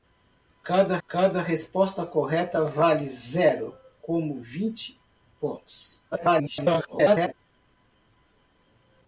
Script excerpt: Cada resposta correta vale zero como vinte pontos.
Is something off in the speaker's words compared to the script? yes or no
yes